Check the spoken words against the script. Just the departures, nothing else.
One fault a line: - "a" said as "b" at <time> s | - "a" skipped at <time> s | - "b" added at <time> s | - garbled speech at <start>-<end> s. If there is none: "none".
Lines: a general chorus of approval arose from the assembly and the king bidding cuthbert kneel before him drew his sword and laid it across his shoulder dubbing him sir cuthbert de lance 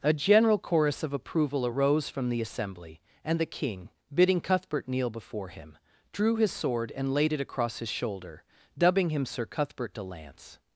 none